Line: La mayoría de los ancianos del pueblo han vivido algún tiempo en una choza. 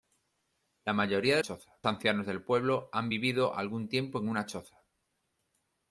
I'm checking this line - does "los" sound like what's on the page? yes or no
no